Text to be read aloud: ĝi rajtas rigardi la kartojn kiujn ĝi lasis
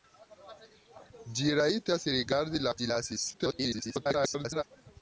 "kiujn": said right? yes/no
no